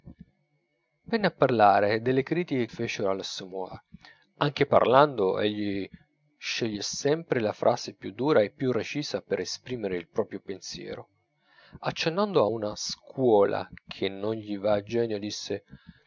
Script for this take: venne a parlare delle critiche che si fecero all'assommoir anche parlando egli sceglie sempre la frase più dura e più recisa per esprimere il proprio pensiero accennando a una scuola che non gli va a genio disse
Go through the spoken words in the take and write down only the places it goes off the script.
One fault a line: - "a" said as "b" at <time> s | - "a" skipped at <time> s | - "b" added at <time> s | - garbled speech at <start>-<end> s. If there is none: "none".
- "che si" skipped at 2.7 s